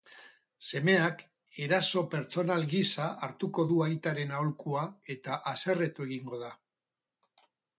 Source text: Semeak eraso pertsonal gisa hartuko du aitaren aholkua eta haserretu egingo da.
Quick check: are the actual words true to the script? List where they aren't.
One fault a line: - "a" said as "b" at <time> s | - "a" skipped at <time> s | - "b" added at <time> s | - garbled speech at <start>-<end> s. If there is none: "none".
none